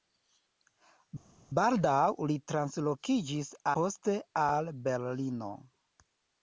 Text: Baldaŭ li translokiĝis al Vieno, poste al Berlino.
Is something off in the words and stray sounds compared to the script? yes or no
yes